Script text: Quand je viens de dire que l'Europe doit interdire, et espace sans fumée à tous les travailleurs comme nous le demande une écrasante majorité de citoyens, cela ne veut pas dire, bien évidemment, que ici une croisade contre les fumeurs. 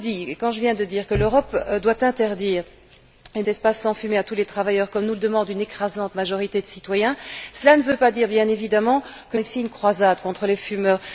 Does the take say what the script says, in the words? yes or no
yes